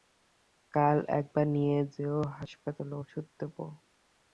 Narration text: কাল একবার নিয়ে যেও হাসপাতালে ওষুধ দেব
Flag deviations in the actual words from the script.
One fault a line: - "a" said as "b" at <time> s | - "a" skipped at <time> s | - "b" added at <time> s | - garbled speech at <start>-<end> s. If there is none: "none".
none